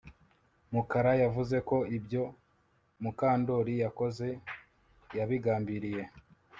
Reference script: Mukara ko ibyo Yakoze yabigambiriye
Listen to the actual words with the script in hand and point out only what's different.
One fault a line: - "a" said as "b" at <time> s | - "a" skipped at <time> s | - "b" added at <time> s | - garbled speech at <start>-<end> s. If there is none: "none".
- "yavuze" added at 1.2 s
- "Mukandoli" added at 3.0 s